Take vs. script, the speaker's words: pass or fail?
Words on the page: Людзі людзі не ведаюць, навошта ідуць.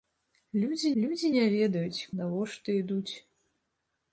pass